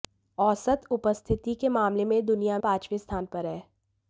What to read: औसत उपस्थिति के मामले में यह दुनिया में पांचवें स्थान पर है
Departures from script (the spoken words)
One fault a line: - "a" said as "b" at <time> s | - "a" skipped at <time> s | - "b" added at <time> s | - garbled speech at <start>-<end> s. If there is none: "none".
- "में" skipped at 2.6 s